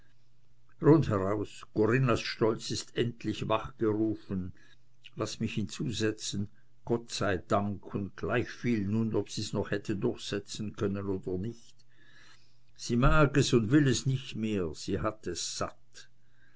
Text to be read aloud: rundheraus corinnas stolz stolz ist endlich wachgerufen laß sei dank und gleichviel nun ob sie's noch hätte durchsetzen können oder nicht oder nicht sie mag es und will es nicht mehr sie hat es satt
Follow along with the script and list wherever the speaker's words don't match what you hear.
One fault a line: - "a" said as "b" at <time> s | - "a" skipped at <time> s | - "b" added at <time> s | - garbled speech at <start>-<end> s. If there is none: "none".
- "stolz" skipped at 2.7 s
- "mich hinzusetzen gott" added at 5.4 s
- "oder nicht" skipped at 11.8 s